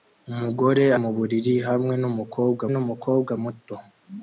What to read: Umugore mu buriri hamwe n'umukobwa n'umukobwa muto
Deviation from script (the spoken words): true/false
false